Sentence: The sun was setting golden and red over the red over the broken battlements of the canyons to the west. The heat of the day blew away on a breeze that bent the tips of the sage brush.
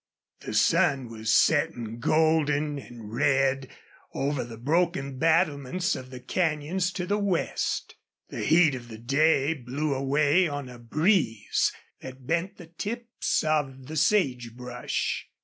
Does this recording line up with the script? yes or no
no